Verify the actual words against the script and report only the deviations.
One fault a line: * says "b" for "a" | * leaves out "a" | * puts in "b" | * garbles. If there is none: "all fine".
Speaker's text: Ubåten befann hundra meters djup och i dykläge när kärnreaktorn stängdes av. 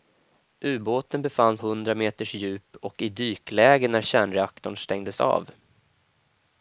all fine